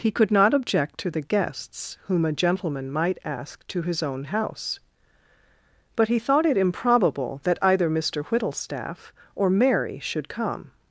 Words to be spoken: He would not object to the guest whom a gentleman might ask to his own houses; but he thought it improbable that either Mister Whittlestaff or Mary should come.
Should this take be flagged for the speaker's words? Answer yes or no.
yes